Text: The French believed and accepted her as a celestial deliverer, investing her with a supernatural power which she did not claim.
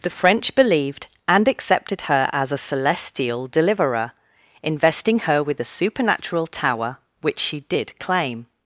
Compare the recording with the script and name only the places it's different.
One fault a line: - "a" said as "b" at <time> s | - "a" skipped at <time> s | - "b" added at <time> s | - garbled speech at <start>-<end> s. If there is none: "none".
- "power" said as "tower" at 6.5 s
- "not" skipped at 8.0 s